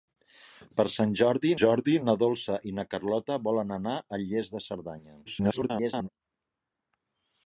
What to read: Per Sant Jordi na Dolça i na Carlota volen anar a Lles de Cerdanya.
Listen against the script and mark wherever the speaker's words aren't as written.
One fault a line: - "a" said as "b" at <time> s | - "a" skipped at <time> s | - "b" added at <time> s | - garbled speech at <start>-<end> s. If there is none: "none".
- "Jordi" added at 1.6 s
- garbled speech at 5.3-6.1 s